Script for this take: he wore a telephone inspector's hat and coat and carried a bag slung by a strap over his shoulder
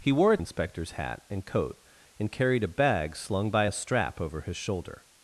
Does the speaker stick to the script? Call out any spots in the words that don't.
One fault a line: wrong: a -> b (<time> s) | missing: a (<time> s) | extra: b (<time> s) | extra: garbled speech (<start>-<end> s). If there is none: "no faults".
missing: telephone (0.4 s)